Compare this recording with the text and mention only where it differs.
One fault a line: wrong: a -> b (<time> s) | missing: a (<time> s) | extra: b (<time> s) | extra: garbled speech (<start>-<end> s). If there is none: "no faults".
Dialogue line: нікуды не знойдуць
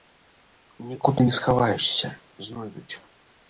extra: схаваешся (1.4 s)